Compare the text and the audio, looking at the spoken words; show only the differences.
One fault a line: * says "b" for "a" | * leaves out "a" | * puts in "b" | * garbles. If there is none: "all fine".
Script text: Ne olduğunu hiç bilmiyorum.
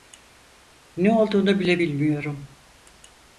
* says "bile" for "hiç"